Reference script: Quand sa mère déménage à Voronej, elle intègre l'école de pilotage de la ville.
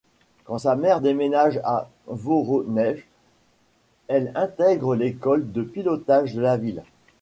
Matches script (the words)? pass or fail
pass